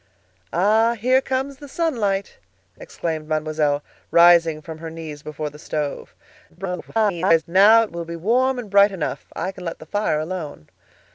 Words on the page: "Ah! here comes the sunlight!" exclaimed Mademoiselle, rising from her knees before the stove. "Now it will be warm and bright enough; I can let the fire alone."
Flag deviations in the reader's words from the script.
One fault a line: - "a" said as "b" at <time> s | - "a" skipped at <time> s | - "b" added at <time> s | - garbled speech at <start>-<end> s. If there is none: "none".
- garbled speech at 6.5-7.4 s